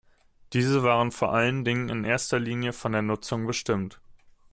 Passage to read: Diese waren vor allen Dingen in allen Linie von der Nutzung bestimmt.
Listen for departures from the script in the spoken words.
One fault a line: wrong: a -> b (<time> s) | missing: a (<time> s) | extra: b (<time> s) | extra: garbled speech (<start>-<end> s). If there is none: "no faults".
wrong: allen -> erster (2.0 s)